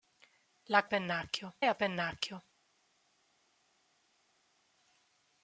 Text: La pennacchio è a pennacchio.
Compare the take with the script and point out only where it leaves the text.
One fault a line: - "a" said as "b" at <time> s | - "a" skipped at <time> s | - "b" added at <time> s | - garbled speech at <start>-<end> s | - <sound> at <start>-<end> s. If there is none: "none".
none